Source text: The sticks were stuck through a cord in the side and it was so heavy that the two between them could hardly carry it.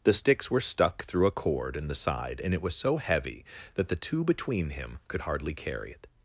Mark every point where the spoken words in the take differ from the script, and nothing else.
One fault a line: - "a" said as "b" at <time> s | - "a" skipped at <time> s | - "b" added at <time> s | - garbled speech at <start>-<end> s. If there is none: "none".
- "them" said as "him" at 4.7 s